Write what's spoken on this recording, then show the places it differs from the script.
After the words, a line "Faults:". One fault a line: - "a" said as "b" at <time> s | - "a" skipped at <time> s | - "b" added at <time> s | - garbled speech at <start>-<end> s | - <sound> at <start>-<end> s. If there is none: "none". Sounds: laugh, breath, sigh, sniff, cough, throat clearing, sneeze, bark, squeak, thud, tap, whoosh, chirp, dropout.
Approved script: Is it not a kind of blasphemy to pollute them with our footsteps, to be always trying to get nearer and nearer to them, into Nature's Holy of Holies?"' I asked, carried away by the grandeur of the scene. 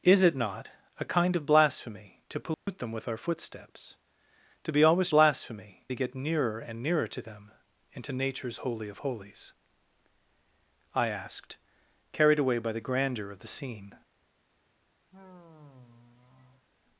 Is it not a kind of blasphemy to pollute them with our footsteps, to be always blasphemy to get nearer and nearer to them, into Nature's Holy of Holies?"' I asked, carried away by the grandeur of the scene.
Faults:
- dropout at 2.5-2.7 s
- "trying" said as "blasphemy" at 5.1 s
- sigh at 15.1-16.7 s